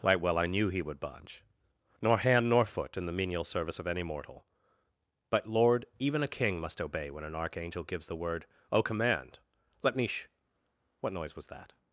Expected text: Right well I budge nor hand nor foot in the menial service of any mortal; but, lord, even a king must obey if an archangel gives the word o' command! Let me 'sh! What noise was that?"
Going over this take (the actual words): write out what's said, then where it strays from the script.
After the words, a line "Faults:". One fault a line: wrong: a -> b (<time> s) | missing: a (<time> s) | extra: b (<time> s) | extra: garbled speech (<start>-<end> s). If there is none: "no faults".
Right well I knew he would budge nor hand nor foot in the menial service of any mortal; but, lord, even a king must obey when an archangel gives the word o' command! Let me 'sh! What noise was that?"
Faults:
extra: knew he would (0.5 s)
wrong: if -> when (7.1 s)